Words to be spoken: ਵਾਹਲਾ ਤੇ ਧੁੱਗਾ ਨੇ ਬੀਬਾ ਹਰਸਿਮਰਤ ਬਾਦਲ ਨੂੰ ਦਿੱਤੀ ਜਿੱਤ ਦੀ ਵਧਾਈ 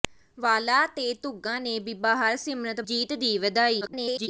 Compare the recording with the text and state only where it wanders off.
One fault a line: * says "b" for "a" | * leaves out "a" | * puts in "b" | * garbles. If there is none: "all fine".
* leaves out "ਬਾਦਲ ਨੂੰ ਦਿੱਤੀ"
* garbles